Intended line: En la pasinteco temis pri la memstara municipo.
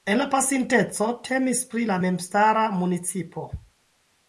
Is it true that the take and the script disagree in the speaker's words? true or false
false